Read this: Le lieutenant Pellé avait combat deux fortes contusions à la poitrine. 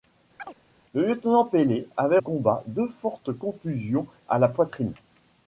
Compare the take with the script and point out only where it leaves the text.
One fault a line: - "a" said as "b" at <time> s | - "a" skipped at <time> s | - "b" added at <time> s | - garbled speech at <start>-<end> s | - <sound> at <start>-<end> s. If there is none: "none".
- chirp at 0.4-0.5 s